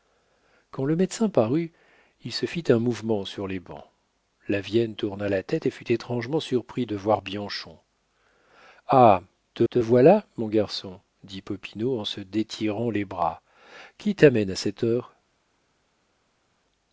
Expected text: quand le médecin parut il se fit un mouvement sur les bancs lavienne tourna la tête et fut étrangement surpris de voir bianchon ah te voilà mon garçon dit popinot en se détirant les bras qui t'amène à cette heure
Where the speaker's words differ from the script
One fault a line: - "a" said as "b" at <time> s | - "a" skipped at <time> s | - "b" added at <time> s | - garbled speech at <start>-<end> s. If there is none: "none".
- "te" added at 9.7 s